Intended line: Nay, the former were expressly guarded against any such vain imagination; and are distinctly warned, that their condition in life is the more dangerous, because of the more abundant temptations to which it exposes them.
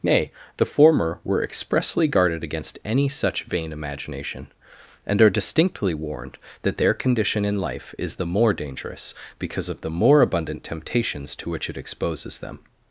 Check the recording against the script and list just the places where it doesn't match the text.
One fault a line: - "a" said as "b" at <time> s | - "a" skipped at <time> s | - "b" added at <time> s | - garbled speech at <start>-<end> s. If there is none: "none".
none